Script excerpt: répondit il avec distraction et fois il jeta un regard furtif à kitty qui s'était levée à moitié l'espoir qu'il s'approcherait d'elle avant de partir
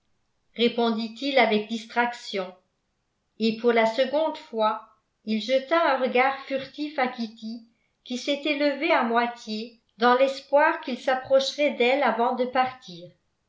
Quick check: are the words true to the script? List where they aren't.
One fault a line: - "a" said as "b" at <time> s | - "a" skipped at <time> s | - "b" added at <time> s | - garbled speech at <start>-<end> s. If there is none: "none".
- "pour la seconde" added at 3.6 s
- "dans" added at 10.0 s